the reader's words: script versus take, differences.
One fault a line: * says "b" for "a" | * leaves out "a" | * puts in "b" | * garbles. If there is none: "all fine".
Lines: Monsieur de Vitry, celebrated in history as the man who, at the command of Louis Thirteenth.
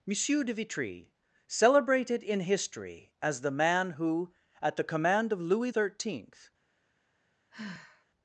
all fine